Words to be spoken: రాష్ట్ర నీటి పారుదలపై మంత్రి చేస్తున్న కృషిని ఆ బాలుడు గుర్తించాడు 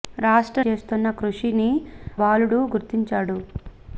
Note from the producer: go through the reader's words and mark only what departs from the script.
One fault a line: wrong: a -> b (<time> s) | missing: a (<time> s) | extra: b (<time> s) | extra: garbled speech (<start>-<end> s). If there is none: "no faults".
missing: నీటి పారుదలపై మంత్రి (0.6 s)
missing: ఆ (1.7 s)